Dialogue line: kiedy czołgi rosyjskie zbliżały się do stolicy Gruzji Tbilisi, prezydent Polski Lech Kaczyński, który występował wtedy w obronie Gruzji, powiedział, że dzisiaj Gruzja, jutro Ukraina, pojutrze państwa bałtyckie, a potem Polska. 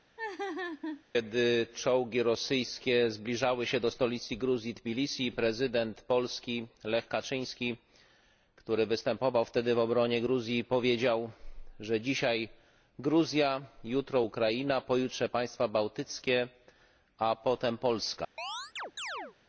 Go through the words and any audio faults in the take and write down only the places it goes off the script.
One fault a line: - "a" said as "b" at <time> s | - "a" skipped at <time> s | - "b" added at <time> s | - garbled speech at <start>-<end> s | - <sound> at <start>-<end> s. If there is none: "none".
- laugh at 0.2-1.0 s
- chirp at 18.4-19.4 s